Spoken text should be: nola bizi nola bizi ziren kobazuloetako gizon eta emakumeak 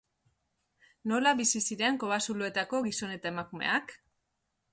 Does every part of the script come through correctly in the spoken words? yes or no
no